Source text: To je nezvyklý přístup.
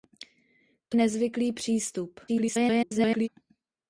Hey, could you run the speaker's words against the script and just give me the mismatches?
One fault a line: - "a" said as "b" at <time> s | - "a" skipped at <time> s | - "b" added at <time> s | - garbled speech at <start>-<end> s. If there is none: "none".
- "je" skipped at 1.0 s
- garbled speech at 2.3-3.3 s